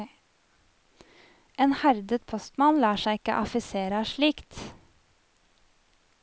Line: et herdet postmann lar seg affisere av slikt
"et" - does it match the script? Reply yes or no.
no